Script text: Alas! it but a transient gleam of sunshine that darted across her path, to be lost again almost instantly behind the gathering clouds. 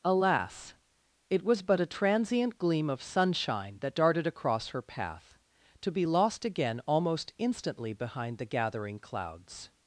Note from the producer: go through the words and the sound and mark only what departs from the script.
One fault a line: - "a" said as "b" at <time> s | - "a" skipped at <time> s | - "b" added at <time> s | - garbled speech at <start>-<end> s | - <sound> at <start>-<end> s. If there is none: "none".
- "was" added at 1.4 s